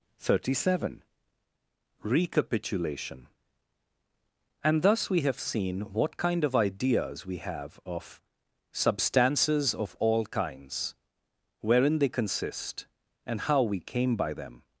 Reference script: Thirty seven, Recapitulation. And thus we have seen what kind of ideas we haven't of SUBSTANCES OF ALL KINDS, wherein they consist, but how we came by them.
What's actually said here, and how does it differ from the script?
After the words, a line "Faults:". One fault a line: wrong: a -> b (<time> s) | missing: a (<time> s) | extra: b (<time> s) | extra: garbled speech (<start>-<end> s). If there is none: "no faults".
Thirty seven, Recapitulation. And thus we have seen what kind of ideas we have of SUBSTANCES OF ALL KINDS, wherein they consist, and how we came by them.
Faults:
wrong: haven't -> have (7.4 s)
wrong: but -> and (13.2 s)